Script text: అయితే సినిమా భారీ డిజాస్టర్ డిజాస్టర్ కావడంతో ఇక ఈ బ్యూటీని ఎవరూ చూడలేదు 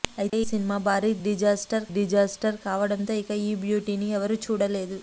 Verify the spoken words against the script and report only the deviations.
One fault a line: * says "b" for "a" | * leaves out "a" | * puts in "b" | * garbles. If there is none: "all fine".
all fine